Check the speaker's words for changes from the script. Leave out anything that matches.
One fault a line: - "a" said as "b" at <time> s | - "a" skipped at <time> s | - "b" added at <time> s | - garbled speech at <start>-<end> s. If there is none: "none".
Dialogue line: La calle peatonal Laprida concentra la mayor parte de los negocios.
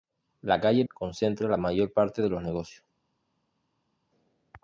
- "peatonal Laprida" skipped at 0.8 s